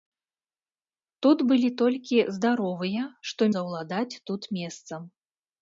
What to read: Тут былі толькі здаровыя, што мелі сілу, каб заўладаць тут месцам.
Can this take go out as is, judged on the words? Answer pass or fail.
fail